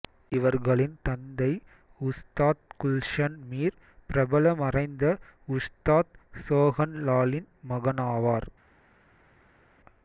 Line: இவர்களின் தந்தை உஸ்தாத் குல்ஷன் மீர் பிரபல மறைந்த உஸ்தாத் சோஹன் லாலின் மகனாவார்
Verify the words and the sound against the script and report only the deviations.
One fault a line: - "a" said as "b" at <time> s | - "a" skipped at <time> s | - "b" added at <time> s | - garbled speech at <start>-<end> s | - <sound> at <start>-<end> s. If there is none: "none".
none